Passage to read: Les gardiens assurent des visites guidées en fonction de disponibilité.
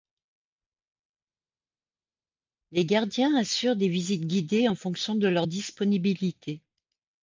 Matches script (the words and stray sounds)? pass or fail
fail